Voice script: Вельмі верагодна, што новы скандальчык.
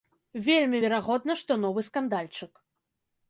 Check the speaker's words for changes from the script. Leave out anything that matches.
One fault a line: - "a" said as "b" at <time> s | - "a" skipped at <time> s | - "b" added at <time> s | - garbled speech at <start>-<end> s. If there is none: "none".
none